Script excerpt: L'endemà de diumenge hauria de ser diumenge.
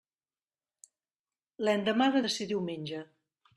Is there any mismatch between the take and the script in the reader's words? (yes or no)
yes